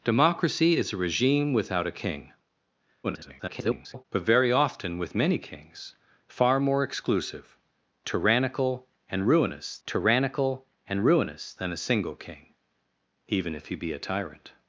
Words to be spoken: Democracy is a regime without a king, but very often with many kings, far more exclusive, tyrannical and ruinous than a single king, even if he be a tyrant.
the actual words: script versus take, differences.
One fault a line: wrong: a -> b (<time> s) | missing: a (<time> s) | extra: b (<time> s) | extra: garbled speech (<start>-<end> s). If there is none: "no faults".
extra: garbled speech (3.0-4.0 s)
extra: tyrannical and ruinous (9.9 s)